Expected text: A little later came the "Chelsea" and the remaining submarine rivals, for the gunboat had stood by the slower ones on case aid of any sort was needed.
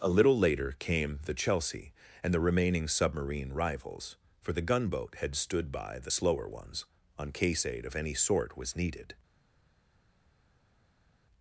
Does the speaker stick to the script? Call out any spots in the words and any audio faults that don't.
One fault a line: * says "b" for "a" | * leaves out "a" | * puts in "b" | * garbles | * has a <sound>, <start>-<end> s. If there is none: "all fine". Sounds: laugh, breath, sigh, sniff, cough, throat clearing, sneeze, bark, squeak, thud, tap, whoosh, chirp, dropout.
all fine